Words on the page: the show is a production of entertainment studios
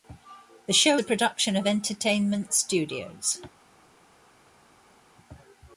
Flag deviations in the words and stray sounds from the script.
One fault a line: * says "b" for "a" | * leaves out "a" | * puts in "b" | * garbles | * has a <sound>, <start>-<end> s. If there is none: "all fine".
* leaves out "is"